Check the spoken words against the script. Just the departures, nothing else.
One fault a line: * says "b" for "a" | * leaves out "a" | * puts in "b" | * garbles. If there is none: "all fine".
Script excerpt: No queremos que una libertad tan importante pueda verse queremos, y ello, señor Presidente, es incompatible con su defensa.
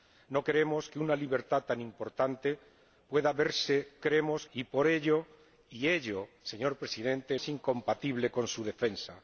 all fine